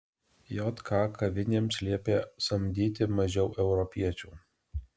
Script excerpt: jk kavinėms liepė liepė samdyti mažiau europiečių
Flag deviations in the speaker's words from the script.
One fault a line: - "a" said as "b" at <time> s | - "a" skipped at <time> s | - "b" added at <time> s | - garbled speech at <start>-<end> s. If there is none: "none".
- "liepė" skipped at 2.2 s